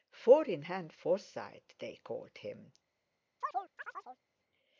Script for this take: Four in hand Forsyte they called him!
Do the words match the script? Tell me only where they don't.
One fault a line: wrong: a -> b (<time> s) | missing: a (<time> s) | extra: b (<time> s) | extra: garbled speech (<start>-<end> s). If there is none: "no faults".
no faults